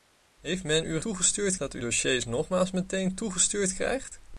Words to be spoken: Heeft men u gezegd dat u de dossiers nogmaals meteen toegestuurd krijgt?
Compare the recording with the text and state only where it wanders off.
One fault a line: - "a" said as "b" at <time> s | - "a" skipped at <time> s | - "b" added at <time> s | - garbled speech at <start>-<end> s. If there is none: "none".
- "gezegd" said as "toegestuurd" at 1.0 s
- "de" skipped at 1.8 s